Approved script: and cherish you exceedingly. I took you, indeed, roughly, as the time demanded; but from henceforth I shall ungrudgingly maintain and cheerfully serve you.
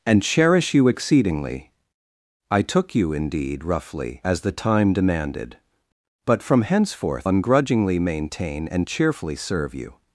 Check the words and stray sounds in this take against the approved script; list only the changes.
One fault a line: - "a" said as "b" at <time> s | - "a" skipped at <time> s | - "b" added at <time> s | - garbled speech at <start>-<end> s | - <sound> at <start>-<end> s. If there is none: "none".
- "I shall" skipped at 7.3 s